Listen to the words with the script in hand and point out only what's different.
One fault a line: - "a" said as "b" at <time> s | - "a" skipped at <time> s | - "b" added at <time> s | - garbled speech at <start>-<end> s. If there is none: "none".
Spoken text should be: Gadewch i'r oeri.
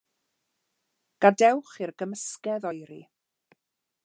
- "gymysgedd" added at 2.0 s